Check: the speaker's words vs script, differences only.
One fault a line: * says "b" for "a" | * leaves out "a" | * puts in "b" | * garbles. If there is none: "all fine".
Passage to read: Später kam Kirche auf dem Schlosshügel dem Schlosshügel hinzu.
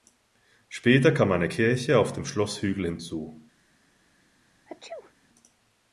* puts in "eine"
* leaves out "dem Schlosshügel"